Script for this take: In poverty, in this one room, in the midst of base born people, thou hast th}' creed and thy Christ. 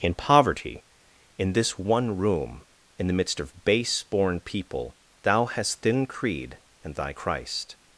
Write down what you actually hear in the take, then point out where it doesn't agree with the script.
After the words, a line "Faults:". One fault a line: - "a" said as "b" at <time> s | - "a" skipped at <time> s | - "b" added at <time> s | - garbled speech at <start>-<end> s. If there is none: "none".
In poverty, in this one room, in the midst of base born people, thou hast thin}' creed and thy Christ.
Faults:
- "th" said as "thin" at 5.8 s